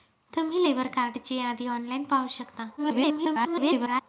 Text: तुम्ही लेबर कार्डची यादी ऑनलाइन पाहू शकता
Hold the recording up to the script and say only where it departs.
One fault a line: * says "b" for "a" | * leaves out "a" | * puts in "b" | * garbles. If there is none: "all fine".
* garbles